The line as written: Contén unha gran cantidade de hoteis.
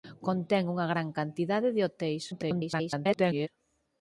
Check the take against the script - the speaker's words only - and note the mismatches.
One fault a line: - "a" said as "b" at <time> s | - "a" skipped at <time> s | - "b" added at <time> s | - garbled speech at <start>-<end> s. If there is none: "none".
- garbled speech at 2.3-3.5 s